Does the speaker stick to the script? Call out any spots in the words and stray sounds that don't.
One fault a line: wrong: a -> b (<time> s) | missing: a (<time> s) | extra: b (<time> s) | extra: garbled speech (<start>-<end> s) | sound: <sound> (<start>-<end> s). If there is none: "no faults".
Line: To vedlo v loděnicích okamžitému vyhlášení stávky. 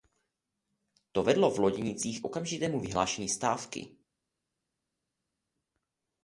no faults